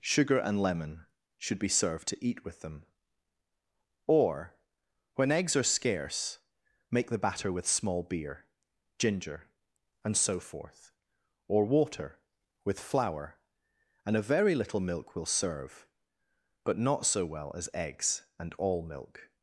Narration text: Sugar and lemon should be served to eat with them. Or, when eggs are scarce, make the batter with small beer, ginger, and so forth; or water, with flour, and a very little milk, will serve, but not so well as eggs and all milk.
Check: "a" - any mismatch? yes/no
no